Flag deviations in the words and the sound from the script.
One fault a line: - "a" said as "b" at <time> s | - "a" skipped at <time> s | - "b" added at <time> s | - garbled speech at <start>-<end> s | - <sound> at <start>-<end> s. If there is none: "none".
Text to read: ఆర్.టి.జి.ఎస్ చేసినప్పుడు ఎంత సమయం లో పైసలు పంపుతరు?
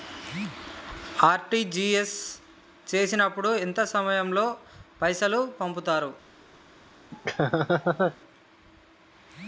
- laugh at 7.1-8.2 s